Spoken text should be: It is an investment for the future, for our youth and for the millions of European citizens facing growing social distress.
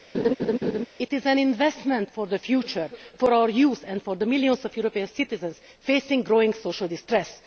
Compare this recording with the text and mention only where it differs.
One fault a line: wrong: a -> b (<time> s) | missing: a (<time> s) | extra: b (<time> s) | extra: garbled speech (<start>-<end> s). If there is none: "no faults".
no faults